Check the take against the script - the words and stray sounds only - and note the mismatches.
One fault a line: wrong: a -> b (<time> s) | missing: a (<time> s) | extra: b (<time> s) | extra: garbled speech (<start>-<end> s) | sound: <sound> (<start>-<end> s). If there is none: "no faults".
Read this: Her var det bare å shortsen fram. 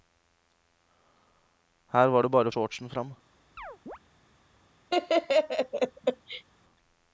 sound: chirp (3.6-4.0 s)
sound: laugh (4.9-6.4 s)